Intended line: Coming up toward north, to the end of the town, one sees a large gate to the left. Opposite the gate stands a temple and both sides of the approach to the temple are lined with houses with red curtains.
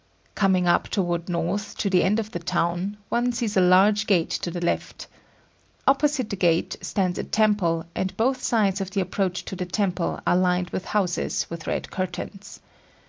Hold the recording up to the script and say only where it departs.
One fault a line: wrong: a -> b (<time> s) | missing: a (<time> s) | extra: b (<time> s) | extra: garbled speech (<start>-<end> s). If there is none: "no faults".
no faults